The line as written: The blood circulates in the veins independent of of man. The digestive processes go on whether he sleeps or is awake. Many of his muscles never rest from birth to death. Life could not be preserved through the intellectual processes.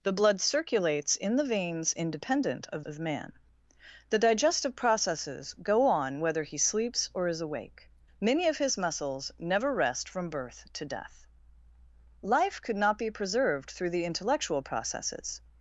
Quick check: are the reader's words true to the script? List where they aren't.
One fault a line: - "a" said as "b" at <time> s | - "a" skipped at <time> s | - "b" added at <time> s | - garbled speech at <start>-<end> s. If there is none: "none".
none